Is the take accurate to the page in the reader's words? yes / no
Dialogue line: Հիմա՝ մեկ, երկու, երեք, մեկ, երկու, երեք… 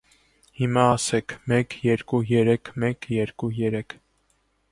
no